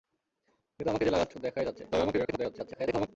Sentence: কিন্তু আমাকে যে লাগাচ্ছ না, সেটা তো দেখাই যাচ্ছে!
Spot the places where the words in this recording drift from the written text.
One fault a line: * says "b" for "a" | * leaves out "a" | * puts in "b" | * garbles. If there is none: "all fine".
* leaves out "না সেটা"
* garbles